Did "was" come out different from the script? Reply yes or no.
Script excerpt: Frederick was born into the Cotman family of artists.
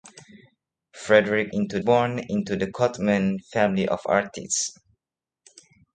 yes